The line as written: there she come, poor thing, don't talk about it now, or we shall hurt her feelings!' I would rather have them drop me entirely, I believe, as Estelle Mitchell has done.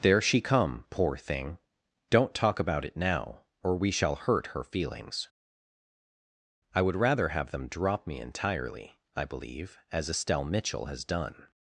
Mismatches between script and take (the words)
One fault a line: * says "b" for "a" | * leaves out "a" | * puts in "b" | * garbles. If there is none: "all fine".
all fine